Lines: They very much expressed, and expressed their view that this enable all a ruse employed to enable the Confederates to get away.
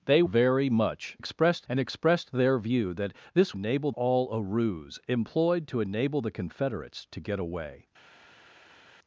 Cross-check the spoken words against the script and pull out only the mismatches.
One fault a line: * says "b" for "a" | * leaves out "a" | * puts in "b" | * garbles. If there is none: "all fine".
all fine